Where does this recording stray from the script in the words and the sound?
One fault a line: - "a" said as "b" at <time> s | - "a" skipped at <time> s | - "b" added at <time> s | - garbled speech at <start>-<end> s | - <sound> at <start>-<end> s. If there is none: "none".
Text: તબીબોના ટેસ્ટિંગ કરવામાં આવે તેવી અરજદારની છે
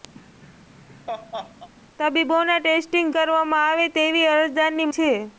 - laugh at 0.1-1.7 s